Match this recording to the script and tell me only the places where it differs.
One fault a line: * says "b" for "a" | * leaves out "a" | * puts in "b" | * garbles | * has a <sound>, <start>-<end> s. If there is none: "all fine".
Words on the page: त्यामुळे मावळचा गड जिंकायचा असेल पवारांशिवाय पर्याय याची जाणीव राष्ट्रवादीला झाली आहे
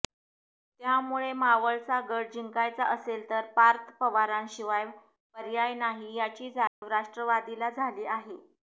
* puts in "तर पार्थ"
* puts in "नाही"
* has a dropout, 6.7-6.8 s